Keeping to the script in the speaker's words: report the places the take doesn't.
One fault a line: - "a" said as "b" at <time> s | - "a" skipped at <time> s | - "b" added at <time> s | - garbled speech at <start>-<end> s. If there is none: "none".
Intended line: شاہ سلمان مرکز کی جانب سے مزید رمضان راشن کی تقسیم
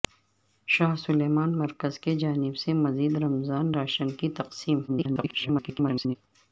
- garbled speech at 4.9-6.2 s